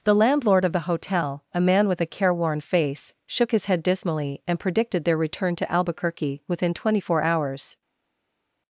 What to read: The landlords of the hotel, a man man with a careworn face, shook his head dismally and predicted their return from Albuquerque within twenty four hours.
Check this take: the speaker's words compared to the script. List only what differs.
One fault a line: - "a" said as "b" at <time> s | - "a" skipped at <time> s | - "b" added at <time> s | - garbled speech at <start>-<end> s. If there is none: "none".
- "landlords" said as "landlord" at 0.1 s
- "man" skipped at 1.9 s
- "from" said as "to" at 5.6 s